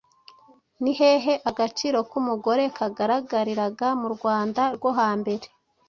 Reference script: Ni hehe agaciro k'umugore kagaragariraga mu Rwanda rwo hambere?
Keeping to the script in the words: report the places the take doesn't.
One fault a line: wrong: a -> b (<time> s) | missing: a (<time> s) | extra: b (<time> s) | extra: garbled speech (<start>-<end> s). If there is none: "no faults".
no faults